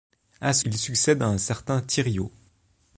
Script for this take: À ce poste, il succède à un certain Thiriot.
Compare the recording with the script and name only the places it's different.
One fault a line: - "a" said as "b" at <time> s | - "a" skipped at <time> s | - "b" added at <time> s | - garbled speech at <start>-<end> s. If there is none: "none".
- "poste" skipped at 0.7 s